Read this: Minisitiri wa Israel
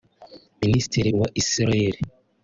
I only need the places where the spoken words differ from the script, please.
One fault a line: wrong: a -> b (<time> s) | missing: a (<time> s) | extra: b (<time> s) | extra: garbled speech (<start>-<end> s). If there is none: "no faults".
no faults